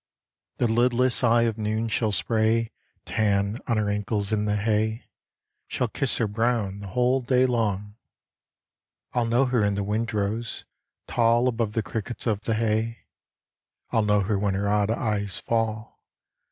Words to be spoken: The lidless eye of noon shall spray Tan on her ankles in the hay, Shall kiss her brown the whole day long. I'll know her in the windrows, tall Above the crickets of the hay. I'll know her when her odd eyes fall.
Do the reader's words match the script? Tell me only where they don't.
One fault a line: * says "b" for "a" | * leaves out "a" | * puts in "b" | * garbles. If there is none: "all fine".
all fine